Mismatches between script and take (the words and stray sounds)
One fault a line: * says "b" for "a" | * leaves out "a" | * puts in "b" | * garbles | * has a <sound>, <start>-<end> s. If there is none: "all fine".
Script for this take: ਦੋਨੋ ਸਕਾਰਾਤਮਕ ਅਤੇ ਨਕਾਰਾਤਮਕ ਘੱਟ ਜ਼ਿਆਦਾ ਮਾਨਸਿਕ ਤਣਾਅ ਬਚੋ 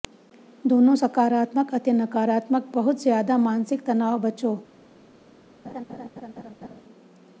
* says "ਬਹੁਤ" for "ਘੱਟ"
* has a laugh, 5.6-6.8 s